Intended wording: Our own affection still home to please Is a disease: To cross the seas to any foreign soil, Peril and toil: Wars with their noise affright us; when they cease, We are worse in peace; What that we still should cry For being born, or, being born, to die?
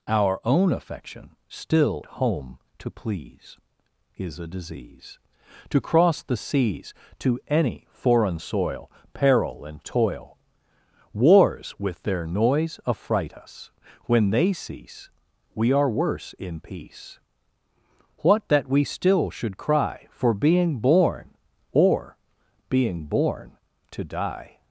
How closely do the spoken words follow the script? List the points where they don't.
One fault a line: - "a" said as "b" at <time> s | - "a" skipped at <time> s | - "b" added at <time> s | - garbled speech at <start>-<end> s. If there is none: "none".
none